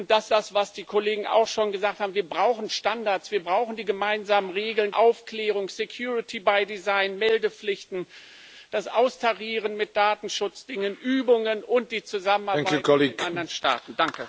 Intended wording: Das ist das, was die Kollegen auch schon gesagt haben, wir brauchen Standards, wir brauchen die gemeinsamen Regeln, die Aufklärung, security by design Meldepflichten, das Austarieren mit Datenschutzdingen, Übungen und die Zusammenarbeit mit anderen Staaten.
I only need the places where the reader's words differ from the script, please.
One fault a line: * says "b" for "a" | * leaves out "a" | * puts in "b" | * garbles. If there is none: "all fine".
* leaves out "ist"
* leaves out "die"